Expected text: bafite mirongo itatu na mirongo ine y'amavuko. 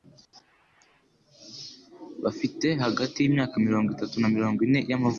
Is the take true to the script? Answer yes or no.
no